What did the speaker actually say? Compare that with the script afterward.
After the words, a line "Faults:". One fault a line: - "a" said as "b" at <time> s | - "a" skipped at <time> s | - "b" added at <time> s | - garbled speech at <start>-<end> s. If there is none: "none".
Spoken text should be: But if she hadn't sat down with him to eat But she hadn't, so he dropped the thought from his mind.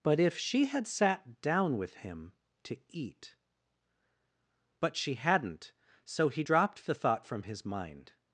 But if she had sat down with him to eat But she hadn't, so he dropped the thought from his mind.
Faults:
- "hadn't" said as "had" at 0.7 s